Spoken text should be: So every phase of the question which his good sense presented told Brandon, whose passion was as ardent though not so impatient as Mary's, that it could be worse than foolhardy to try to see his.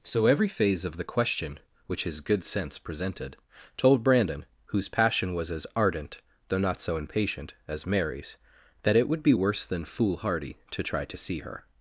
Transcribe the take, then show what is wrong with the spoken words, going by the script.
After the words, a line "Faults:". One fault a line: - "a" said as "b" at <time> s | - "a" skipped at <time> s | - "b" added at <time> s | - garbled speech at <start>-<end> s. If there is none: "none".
So every phase of the question which his good sense presented told Brandon, whose passion was as ardent though not so impatient as Mary's, that it would be worse than foolhardy to try to see her.
Faults:
- "could" said as "would" at 9.1 s
- "his" said as "her" at 11.4 s